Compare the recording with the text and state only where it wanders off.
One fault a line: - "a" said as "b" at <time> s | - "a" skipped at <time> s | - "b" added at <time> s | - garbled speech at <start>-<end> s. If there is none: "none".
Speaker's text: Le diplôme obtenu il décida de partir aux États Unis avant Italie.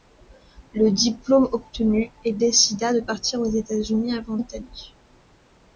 none